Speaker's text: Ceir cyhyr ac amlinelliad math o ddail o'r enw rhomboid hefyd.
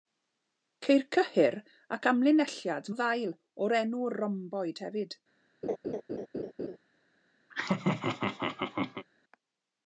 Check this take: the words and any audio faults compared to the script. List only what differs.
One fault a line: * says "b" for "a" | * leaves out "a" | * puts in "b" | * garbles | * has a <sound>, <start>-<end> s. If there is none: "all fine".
* leaves out "math"
* has a laugh, 5.6-6.8 s
* has a laugh, 7.5-9.1 s